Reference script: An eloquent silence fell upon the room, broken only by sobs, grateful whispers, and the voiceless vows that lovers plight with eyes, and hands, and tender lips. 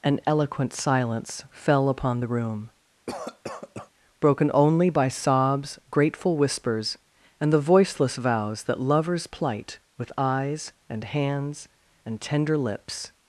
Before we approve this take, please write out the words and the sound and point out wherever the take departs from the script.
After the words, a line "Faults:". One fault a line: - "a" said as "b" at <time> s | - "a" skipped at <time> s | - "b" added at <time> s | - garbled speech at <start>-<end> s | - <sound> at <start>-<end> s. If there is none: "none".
An eloquent silence fell upon the room, broken only by sobs, grateful whispers, and the voiceless vows that lovers plight with eyes, and hands, and tender lips.
Faults:
- cough at 3.1-3.9 s